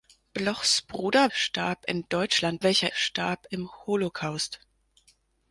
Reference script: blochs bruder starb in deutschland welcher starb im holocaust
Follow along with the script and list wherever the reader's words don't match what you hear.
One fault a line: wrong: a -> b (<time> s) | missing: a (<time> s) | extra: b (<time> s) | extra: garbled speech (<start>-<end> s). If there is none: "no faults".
no faults